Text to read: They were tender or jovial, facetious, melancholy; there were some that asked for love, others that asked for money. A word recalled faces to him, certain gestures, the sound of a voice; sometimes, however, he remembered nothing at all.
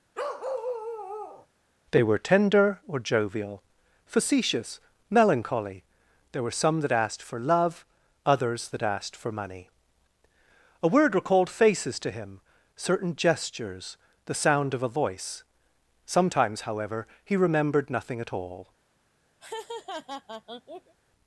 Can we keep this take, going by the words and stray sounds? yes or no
no